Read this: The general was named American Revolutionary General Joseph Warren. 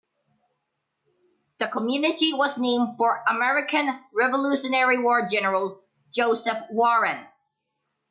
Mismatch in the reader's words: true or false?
true